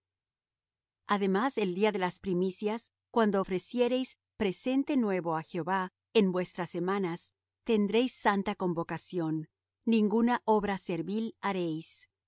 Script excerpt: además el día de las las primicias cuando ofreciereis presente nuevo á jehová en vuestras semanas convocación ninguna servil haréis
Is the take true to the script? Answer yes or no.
no